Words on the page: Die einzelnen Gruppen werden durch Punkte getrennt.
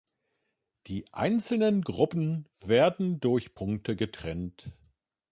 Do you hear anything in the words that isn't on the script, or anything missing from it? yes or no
no